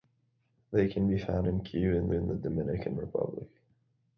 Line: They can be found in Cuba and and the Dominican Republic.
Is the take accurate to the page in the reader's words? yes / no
yes